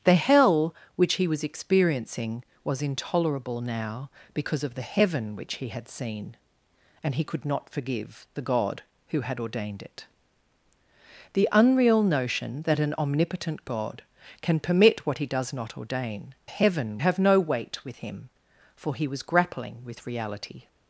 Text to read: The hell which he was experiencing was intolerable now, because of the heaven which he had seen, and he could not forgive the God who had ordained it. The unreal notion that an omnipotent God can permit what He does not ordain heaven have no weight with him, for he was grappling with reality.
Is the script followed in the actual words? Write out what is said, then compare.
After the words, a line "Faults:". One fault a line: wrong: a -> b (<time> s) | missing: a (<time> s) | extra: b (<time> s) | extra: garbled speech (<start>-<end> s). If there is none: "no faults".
The hell which he was experiencing was intolerable now, because of the heaven which he had seen, and he could not forgive the God who had ordained it. The unreal notion that an omnipotent God can permit what He does not ordain heaven have no weight with him, for he was grappling with reality.
Faults:
no faults